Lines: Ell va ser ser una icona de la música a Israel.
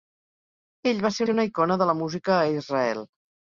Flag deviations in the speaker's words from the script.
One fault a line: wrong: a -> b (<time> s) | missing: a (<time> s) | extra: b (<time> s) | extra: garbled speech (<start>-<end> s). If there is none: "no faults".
no faults